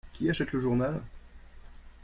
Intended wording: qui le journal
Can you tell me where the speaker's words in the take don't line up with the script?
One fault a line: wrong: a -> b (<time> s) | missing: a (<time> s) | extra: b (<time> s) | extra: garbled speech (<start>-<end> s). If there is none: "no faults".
extra: achète (0.3 s)